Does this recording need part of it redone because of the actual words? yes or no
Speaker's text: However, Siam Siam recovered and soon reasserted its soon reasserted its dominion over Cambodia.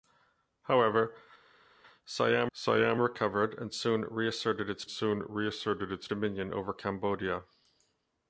no